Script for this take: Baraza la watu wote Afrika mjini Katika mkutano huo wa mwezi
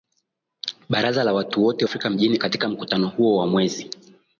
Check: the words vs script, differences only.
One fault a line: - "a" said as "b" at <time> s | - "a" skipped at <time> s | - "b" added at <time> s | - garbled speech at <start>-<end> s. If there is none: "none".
none